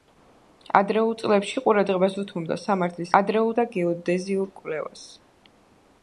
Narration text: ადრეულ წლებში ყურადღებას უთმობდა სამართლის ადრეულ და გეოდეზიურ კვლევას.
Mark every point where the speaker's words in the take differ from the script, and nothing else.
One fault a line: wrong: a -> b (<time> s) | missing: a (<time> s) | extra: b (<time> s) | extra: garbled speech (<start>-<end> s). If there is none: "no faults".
no faults